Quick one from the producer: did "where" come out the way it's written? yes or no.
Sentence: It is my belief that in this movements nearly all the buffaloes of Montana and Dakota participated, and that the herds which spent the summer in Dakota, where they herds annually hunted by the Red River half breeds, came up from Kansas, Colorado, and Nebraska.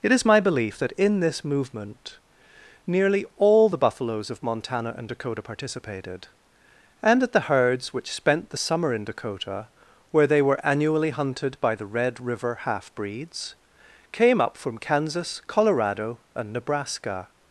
yes